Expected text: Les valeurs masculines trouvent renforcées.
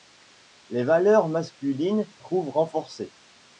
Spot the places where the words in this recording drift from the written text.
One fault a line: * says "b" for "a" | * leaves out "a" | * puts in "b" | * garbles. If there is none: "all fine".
all fine